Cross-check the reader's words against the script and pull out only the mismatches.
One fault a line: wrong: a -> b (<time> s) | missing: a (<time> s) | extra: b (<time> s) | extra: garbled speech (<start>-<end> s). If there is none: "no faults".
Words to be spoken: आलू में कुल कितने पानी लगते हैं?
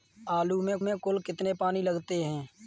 extra: में (0.8 s)